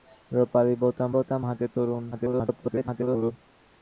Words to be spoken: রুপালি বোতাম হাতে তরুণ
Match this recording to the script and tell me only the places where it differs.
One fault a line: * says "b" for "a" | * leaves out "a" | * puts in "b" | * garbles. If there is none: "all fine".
* puts in "বোতাম"
* garbles